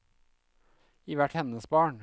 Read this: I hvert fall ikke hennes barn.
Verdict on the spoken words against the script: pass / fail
fail